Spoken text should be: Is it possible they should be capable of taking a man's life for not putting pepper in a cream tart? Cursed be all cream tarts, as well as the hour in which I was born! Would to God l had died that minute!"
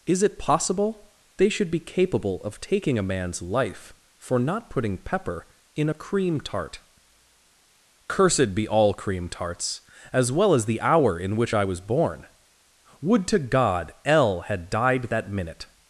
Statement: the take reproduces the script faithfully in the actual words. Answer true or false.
true